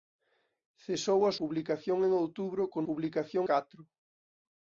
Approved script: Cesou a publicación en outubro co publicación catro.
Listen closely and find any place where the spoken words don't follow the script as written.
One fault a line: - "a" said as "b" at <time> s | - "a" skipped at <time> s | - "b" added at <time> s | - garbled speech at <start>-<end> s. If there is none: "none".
none